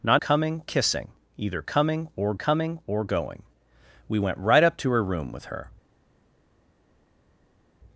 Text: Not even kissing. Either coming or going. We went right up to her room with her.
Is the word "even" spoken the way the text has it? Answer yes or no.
no